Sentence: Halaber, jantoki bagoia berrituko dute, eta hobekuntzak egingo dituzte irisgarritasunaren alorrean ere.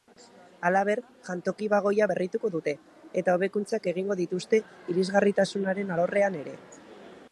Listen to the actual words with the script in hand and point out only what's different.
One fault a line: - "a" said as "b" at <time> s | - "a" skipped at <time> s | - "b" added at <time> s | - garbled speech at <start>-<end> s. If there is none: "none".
none